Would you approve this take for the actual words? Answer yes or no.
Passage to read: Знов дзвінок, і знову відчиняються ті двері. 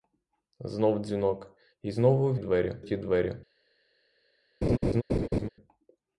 no